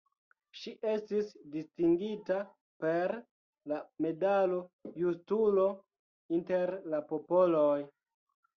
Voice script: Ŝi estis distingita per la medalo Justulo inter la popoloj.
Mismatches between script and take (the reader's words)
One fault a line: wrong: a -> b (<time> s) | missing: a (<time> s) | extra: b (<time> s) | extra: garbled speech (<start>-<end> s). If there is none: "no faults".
no faults